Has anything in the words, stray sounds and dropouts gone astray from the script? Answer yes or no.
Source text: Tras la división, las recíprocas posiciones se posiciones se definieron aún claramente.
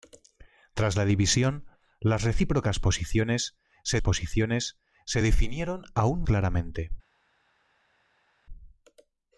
no